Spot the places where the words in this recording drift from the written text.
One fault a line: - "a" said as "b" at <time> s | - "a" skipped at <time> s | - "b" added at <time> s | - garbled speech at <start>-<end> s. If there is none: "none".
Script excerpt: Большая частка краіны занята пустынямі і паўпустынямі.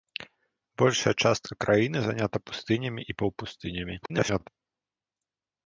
- garbled speech at 4.0-4.5 s